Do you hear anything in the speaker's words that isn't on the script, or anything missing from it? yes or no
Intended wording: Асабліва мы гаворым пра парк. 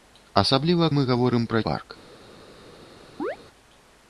no